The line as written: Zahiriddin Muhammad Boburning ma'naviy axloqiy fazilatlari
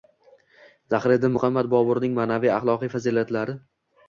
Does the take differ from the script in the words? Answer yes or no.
no